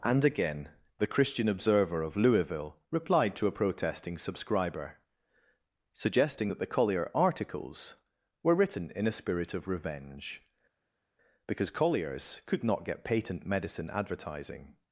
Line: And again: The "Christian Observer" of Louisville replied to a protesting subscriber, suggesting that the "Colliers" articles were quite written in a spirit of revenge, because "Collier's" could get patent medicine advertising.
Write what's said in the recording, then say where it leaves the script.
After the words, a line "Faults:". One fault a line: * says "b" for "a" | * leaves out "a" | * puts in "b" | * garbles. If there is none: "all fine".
And again: The "Christian Observer" of Louisville replied to a protesting subscriber, suggesting that the "Collier" articles were written in a spirit of revenge, because "Collier's" could not get patent medicine advertising.
Faults:
* says "Collier" for "Colliers"
* leaves out "quite"
* puts in "not"